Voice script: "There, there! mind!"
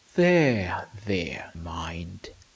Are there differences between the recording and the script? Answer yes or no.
no